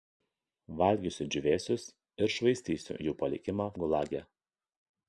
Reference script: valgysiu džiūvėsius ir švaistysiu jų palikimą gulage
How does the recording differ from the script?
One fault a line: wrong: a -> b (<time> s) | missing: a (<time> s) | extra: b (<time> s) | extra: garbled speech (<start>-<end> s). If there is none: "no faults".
no faults